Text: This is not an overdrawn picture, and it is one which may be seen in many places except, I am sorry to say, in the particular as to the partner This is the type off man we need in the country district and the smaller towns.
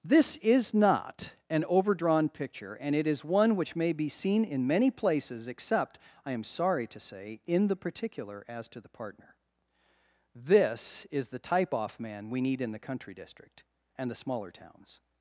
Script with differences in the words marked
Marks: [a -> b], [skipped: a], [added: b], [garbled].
This is not an overdrawn picture, and it is one which may be seen in many places except, I am sorry to say, in the particular as to the partner This is the type off man we need in the country district and the smaller towns.